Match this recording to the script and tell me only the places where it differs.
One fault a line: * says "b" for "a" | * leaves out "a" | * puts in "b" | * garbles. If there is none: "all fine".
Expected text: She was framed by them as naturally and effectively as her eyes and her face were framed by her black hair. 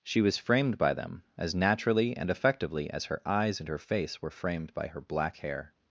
all fine